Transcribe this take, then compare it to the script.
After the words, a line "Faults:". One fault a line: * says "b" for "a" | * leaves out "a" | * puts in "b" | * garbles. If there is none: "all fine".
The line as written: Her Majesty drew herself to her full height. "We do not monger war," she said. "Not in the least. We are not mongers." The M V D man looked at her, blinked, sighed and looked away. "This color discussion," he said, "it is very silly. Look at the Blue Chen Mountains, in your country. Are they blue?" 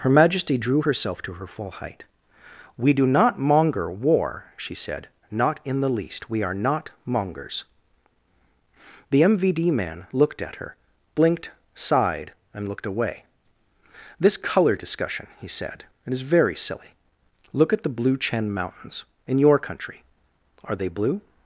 Her Majesty drew herself to her full height. "We do not monger war," she said. "Not in the least. We are not mongers." The M V D man looked at her, blinked, sighed and looked away. "This color discussion," he said, "it is very silly. Look at the Blue Chen Mountains, in your country. Are they blue?"
Faults:
all fine